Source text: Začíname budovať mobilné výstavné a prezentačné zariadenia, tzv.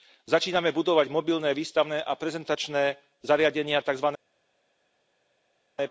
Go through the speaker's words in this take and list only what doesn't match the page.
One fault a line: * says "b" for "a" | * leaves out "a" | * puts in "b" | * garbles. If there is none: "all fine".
all fine